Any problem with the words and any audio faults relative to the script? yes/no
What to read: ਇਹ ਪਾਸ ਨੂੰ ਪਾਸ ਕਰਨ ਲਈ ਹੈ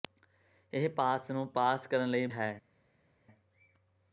no